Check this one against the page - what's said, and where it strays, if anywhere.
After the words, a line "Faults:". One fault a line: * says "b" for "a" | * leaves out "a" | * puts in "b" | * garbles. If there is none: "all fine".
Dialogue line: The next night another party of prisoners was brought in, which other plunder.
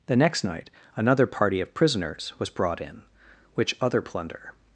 The next night another party of prisoners was brought in, which other plunder.
Faults:
all fine